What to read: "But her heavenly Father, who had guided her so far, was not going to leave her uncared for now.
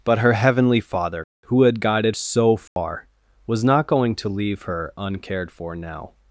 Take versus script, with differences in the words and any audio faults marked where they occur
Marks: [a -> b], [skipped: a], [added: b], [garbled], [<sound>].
"But her heavenly Father, who had guided [skipped: her] so far, [dropout] was not going to leave her uncared for now.